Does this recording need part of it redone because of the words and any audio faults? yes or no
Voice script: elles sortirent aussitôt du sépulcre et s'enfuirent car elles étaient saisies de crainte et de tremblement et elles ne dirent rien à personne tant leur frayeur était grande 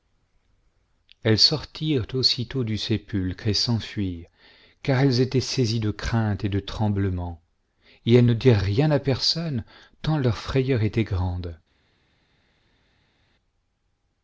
no